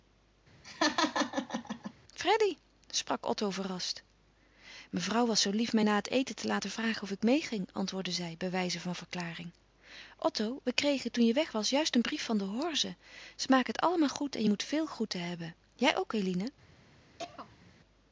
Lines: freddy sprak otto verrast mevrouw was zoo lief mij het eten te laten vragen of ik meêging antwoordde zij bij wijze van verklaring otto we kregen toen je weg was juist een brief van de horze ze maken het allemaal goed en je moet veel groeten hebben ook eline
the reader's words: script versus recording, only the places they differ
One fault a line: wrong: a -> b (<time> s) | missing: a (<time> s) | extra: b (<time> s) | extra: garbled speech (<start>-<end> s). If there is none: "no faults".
extra: na (5.8 s)
extra: jij (15.7 s)